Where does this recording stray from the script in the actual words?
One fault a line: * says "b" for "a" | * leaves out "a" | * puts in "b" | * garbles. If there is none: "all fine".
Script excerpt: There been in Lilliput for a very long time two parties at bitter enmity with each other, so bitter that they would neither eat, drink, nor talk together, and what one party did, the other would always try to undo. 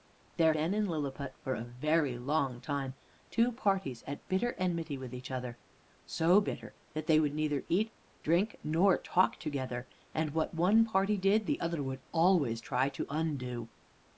all fine